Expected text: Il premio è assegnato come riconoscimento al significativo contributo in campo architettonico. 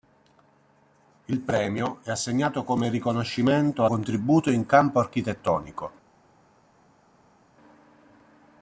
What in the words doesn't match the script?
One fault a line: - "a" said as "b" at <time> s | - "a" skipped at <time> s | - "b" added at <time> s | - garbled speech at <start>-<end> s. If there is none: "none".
- "al significativo" skipped at 3.9 s